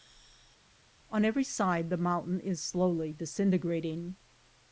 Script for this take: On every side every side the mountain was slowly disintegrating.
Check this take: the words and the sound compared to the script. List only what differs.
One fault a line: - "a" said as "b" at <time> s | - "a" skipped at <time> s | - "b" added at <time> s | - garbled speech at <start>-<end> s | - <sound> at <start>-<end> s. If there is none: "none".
- "every side" skipped at 1.9 s
- "was" said as "is" at 2.4 s